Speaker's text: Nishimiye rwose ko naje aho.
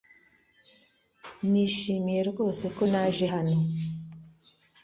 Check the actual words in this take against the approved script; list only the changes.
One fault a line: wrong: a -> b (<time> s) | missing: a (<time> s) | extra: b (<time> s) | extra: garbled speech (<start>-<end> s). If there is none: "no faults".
wrong: aho -> hano (3.3 s)